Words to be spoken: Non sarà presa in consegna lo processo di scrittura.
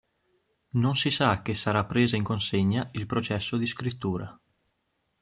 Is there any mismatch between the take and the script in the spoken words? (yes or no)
yes